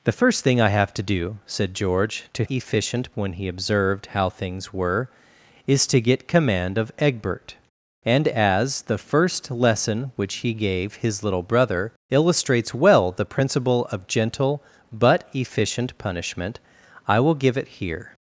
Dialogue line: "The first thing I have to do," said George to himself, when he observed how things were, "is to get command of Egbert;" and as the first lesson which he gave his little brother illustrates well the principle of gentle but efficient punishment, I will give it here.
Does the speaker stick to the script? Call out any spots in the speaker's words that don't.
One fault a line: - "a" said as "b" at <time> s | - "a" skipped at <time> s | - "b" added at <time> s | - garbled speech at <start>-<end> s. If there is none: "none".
- "himself" said as "efficient" at 2.5 s